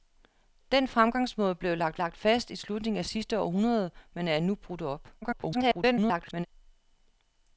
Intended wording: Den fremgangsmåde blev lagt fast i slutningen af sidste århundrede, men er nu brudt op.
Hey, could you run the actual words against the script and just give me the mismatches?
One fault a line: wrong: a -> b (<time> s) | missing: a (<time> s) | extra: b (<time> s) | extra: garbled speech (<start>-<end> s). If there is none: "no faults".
extra: lagt (2.0 s)
extra: garbled speech (5.2-6.5 s)